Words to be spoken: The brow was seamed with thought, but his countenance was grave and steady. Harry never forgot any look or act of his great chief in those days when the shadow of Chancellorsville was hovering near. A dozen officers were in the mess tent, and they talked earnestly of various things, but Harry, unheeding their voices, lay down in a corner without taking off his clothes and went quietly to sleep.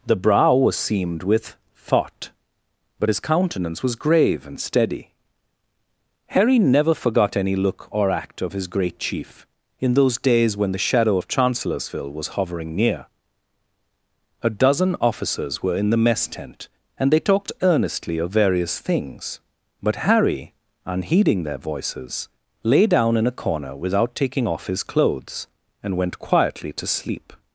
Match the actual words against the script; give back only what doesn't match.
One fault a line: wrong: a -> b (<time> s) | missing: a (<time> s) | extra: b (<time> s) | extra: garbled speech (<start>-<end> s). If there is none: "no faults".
no faults